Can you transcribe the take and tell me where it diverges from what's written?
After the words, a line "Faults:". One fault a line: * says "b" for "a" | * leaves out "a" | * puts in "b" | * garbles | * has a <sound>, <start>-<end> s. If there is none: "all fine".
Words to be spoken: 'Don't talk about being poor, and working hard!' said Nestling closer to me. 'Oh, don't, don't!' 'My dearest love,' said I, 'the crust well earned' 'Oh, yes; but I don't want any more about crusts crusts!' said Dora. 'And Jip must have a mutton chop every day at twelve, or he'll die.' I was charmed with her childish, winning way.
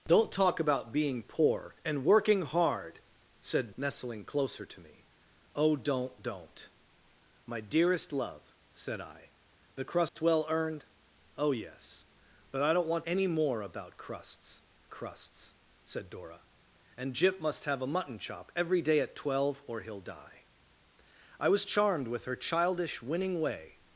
'Don't talk about being poor, and working hard!' said Nestling closer to me. 'Oh, don't, don't!' 'My dearest love,' said I, 'the crust well earned' 'Oh, yes; but I don't want any more about crusts crusts!' said Dora. 'And Jip must have a mutton chop every day at twelve, or he'll die.' I was charmed with her childish, winning way.
Faults:
* has a dropout, 10.1-10.2 s